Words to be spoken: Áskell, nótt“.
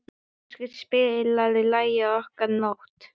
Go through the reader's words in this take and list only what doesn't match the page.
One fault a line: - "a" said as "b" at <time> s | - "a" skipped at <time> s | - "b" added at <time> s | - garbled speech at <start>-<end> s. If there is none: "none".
- "spilaðu lagið Okkar" added at 0.8 s